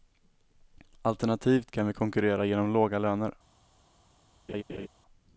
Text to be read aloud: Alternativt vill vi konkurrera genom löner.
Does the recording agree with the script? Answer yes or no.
no